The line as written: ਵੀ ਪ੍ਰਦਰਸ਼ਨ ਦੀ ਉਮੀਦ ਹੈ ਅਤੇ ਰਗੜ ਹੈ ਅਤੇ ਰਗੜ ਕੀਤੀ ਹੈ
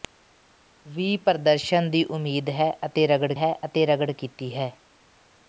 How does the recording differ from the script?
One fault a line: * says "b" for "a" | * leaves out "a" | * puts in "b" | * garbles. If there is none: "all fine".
all fine